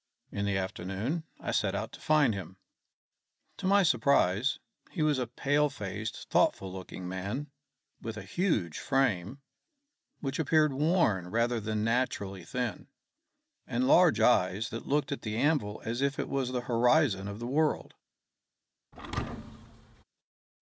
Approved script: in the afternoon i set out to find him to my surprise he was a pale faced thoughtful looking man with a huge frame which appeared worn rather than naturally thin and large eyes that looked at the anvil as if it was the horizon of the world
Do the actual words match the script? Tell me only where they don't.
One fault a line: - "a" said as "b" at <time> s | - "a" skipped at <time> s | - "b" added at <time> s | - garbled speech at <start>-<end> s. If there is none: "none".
none